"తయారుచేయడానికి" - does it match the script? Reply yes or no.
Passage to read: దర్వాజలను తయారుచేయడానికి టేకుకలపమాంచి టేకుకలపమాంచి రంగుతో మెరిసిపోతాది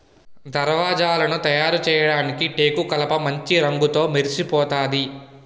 yes